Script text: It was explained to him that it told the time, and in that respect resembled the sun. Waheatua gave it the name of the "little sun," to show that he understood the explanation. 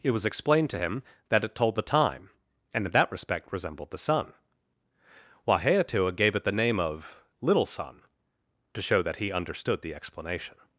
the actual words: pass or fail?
fail